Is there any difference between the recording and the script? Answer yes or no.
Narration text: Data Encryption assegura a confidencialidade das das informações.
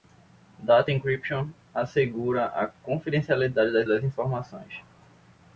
no